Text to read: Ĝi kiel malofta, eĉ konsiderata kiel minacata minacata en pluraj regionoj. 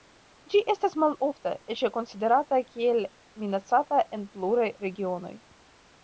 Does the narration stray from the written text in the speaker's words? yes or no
yes